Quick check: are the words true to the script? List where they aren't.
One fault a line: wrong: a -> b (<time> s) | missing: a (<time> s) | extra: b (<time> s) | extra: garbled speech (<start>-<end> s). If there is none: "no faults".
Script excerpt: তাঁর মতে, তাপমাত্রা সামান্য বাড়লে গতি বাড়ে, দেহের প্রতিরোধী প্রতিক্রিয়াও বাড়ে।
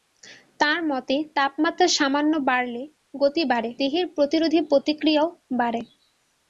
no faults